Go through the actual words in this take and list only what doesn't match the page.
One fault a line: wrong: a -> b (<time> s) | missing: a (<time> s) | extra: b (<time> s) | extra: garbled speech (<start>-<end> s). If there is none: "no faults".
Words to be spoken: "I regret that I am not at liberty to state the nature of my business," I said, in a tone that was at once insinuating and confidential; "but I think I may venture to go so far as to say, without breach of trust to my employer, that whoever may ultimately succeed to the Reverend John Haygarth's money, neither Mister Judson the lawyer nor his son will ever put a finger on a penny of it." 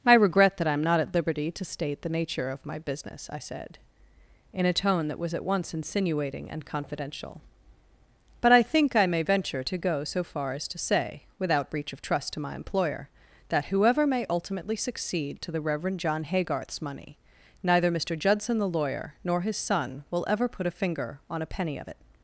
no faults